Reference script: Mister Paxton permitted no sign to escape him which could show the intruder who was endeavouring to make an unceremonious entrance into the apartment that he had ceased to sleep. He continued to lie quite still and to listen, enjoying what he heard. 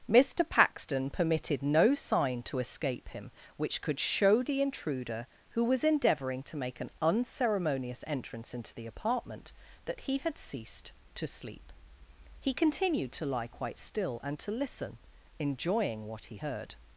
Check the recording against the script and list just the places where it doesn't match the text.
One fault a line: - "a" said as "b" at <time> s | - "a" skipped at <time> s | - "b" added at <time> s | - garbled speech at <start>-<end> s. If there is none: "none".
none